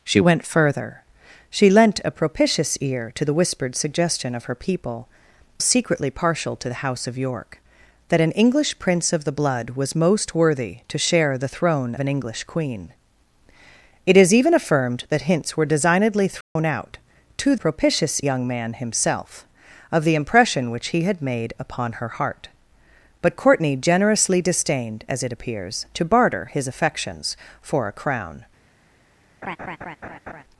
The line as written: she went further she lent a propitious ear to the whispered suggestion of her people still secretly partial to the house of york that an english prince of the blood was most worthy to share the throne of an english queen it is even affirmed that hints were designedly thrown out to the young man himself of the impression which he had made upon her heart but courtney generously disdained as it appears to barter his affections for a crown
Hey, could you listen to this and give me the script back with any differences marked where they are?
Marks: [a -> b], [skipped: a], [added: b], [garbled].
she went further she lent a propitious ear to the whispered suggestion of her people [skipped: still] secretly partial to the house of york that an english prince of the blood was most worthy to share the throne [skipped: of] an english queen it is even affirmed that hints were designedly thrown out to [the -> propitious] young man himself of the impression which he had made upon her heart but courtney generously disdained as it appears to barter his affections for a crown